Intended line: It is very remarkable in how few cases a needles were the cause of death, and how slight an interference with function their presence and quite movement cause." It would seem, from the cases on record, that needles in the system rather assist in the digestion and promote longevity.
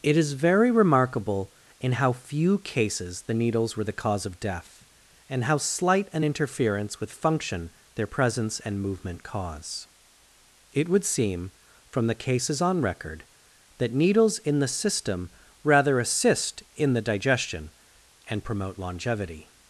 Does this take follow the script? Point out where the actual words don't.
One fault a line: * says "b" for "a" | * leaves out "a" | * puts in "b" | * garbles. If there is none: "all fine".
* says "the" for "a"
* leaves out "quite"